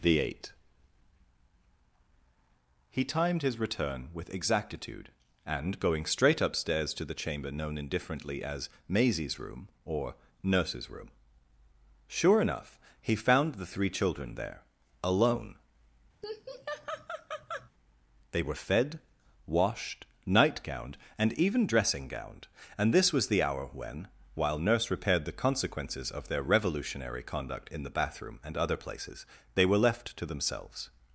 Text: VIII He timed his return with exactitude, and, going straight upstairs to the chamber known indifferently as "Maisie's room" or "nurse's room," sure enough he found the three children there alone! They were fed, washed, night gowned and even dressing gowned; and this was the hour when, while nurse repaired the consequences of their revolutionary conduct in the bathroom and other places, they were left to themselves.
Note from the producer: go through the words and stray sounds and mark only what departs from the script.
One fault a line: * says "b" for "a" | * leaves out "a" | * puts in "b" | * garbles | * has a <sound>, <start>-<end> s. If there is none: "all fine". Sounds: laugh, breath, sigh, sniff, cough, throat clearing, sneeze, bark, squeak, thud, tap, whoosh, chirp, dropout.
* says "The eight" for "VIII"
* has a laugh, 16.2-17.7 s